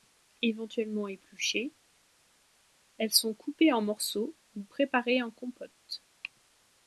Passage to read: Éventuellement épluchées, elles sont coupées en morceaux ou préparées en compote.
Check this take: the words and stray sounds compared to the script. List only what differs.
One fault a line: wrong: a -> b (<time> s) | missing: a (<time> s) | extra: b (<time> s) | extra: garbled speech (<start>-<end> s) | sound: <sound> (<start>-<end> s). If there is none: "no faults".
no faults